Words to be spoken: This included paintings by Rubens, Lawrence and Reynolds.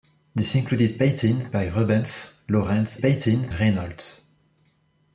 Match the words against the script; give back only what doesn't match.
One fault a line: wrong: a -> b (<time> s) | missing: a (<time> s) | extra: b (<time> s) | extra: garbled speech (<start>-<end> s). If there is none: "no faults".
wrong: and -> paintings (3.0 s)